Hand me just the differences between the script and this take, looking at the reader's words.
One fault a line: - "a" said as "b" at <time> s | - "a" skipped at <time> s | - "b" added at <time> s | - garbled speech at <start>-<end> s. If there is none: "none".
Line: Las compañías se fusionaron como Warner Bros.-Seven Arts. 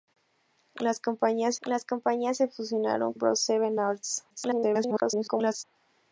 - "las compañías" added at 1.7 s
- "como Warner" skipped at 3.1 s
- garbled speech at 4.3-5.6 s